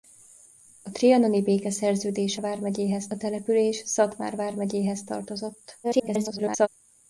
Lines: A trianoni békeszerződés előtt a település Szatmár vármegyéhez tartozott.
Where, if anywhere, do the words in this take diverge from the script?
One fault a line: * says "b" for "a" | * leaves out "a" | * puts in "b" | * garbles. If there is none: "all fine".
* says "vármegyéhez" for "előtt"
* garbles